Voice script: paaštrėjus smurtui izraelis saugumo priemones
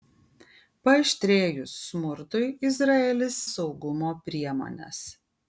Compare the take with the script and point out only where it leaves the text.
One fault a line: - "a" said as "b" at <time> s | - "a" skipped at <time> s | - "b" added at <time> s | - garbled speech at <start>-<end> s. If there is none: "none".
none